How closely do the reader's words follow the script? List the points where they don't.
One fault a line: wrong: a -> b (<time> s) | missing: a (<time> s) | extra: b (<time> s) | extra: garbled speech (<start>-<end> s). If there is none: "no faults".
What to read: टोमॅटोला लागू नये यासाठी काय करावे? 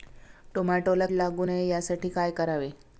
no faults